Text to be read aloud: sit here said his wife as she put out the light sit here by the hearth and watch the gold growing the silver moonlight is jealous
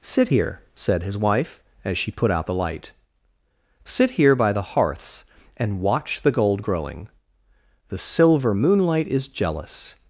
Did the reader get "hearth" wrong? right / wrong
wrong